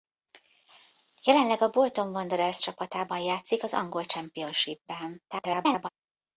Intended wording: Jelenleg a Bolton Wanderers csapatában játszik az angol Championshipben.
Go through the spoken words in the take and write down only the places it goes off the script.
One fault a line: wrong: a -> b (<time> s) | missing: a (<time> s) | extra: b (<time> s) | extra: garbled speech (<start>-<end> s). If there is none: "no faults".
extra: garbled speech (5.3-5.9 s)